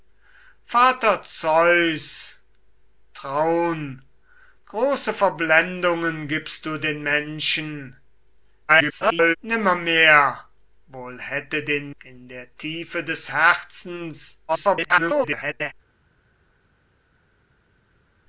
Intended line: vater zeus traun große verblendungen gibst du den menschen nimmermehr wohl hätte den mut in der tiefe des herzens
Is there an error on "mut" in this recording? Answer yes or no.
yes